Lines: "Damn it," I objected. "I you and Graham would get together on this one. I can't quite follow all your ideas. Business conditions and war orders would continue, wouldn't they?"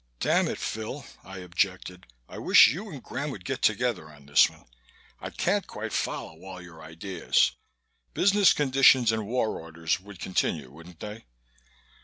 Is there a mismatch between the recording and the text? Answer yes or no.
yes